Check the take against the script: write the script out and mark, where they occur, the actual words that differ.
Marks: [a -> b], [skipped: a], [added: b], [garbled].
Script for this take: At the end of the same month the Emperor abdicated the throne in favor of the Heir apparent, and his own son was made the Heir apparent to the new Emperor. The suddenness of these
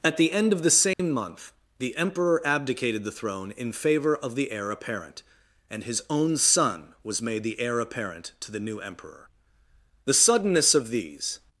At the end of the same month the Emperor abdicated the throne in favor of the Heir apparent, and his own son was made the Heir apparent to the new Emperor. The suddenness of these